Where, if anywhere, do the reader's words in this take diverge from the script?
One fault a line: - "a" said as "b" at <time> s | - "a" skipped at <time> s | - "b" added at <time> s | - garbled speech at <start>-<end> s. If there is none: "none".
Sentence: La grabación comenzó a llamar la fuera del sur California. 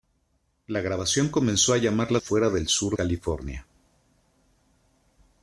none